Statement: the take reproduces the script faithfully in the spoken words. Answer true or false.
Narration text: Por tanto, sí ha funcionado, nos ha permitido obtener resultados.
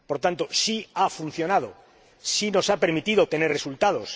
false